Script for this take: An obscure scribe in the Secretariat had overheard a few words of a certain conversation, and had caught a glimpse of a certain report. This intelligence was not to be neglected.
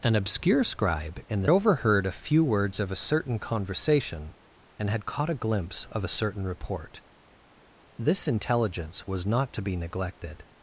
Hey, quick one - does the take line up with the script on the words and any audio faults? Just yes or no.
no